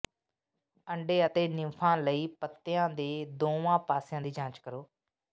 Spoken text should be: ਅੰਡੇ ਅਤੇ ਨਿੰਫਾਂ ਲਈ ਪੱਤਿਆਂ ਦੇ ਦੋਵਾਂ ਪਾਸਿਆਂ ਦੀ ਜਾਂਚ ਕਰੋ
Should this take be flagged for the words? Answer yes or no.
no